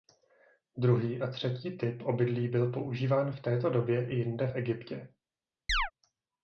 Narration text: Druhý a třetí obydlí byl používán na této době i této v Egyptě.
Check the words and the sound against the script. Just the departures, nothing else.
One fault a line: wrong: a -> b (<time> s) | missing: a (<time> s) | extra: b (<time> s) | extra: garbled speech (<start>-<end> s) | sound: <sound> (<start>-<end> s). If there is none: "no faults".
extra: typ (1.8 s)
wrong: na -> v (3.3 s)
wrong: této -> jinde (4.1 s)
sound: chirp (5.7-5.9 s)